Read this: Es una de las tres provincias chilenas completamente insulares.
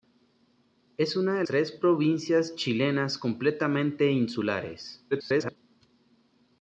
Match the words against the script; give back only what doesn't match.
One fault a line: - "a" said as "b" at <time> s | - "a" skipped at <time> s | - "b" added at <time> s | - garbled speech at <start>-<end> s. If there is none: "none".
- "las" skipped at 1.4 s
- garbled speech at 5.1-5.6 s